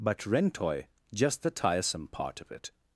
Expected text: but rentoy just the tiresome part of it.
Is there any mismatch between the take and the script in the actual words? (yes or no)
no